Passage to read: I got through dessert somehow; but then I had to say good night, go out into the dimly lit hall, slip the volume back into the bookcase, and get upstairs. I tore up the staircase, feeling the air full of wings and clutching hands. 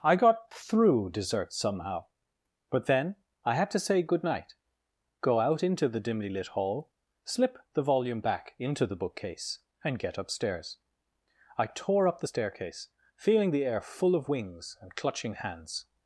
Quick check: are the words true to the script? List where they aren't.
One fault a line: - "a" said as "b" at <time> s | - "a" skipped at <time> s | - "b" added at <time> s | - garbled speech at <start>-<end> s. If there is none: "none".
none